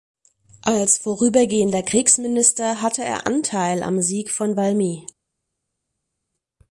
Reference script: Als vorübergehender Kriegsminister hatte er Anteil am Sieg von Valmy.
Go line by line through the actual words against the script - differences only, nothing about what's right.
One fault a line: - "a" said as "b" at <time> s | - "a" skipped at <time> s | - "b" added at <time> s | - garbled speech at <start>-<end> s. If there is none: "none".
none